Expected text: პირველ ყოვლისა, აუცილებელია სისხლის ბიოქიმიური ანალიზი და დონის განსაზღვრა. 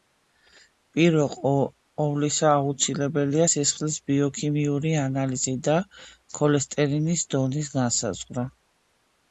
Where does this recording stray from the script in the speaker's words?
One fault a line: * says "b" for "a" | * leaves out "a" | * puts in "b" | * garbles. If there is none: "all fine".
* puts in "ქოლესტერინის"